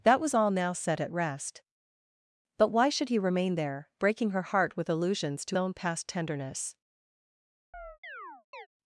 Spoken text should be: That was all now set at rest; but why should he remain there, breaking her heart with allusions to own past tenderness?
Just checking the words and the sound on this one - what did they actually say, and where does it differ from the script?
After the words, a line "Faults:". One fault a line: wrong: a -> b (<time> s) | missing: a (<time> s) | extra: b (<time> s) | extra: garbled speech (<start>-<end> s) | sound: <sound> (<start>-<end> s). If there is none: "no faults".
That was all now set at rest; but why should he remain there, breaking her heart with allusions to own past tenderness?
Faults:
sound: chirp (7.7-8.7 s)